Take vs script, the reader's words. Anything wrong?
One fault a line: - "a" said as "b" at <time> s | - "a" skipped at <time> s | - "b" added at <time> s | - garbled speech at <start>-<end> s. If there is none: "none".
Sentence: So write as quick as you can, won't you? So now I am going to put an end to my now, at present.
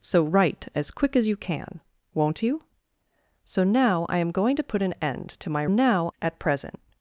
none